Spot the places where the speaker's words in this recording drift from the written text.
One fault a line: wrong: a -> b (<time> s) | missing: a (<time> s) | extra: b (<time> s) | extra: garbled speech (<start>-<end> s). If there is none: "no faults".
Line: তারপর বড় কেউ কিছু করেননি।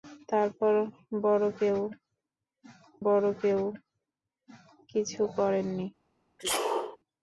extra: বড় কেউ (3.0 s)